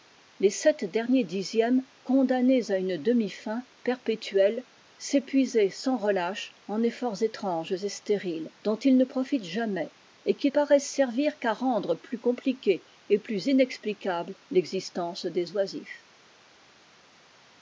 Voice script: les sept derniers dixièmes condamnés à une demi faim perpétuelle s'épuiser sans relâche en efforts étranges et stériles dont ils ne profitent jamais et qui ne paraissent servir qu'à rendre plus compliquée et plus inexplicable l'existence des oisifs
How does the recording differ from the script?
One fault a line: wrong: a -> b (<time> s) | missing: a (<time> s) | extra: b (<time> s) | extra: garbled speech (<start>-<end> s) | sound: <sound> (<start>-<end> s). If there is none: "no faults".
missing: ne (10.5 s)